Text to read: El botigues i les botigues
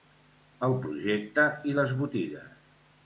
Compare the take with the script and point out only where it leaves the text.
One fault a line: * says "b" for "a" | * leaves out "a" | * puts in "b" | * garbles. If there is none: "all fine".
* says "projecte" for "botigues"